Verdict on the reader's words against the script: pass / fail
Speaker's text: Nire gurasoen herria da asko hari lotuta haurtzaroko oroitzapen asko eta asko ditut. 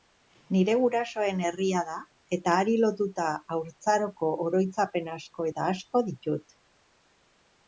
fail